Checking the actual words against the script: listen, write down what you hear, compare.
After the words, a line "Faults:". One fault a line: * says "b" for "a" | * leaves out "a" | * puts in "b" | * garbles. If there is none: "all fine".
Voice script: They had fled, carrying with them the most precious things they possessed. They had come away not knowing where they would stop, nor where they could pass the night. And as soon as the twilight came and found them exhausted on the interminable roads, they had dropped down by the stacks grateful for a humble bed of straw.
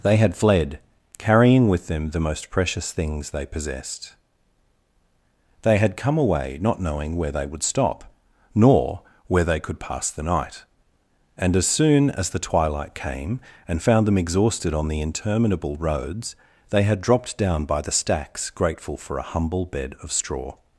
They had fled, carrying with them the most precious things they possessed. They had come away not knowing where they would stop, nor where they could pass the night. And as soon as the twilight came and found them exhausted on the interminable roads, they had dropped down by the stacks grateful for a humble bed of straw.
Faults:
all fine